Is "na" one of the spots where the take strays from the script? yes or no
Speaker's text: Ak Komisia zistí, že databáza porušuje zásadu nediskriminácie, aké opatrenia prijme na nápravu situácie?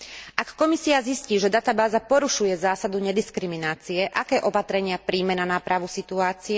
no